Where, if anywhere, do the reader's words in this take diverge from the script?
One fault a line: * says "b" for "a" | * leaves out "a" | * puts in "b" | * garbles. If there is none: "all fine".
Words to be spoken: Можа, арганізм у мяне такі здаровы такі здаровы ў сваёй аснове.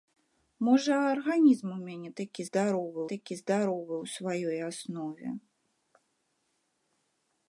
all fine